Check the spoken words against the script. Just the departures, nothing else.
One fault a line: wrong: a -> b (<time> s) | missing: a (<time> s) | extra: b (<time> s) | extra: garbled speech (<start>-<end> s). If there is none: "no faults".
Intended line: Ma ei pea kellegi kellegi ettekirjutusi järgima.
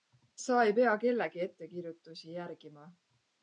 wrong: Ma -> Sa (0.4 s)
missing: kellegi (1.4 s)